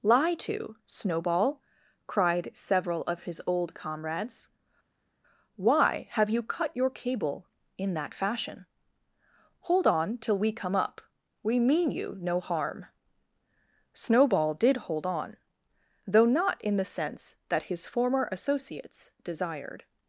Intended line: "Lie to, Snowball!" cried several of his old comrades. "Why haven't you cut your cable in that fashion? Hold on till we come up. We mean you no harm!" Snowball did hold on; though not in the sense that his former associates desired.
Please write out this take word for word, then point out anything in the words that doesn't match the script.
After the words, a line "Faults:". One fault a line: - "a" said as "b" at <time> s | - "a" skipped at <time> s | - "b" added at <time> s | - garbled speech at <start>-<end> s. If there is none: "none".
"Lie to, Snowball!" cried several of his old comrades. "Why have you cut your cable in that fashion? Hold on till we come up. We mean you no harm!" Snowball did hold on; though not in the sense that his former associates desired.
Faults:
- "haven't" said as "have" at 6.1 s